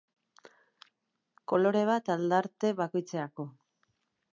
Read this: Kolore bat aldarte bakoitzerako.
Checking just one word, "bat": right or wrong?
right